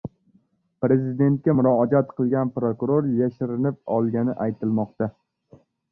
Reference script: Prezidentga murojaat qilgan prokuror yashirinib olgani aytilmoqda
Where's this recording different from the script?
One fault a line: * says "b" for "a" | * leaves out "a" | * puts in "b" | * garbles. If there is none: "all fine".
all fine